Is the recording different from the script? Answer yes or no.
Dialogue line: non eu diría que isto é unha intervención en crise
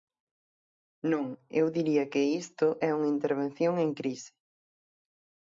no